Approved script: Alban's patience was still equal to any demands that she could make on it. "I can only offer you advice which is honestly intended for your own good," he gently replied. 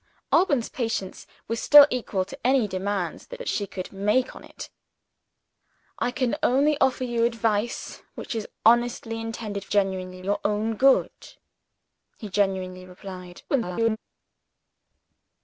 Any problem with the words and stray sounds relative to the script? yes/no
yes